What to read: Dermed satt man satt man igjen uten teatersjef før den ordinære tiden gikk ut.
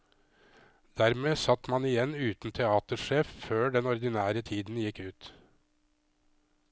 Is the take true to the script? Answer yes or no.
no